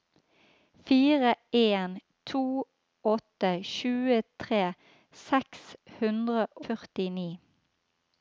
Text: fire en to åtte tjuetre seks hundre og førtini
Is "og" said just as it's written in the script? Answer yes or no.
no